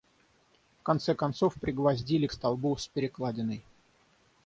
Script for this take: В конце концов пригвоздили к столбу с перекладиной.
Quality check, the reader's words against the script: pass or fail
pass